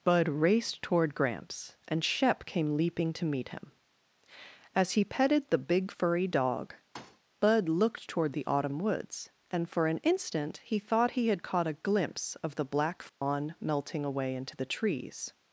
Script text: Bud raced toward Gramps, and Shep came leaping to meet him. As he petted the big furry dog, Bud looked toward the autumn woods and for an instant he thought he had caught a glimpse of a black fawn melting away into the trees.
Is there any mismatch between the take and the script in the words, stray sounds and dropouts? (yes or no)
yes